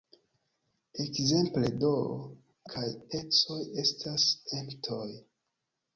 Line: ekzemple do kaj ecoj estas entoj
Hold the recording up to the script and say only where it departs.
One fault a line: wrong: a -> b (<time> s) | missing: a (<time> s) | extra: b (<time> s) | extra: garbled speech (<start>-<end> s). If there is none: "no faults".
no faults